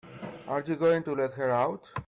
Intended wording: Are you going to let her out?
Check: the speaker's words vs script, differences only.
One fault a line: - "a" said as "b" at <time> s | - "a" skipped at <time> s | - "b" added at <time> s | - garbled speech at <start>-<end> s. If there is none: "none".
none